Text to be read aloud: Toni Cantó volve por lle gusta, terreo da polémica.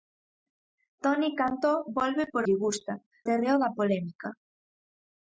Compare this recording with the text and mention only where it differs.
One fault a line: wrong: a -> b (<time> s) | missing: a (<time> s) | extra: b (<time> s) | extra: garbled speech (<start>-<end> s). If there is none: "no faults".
no faults